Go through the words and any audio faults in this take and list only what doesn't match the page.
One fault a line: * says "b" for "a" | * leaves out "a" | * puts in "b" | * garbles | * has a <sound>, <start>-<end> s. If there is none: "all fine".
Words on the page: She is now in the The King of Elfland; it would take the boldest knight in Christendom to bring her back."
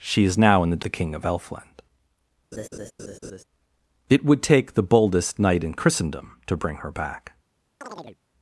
* has a laugh, 2.5-3.4 s
* has a chirp, 7.8-8.2 s